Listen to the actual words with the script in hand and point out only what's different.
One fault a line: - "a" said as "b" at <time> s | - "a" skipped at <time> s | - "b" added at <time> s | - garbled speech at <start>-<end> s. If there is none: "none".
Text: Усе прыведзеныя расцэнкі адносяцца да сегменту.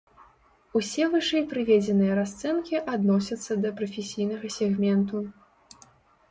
- "вышэй" added at 1.1 s
- "прафесійнага" added at 3.8 s